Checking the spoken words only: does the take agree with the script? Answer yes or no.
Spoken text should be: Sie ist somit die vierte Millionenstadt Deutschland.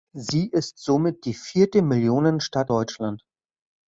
yes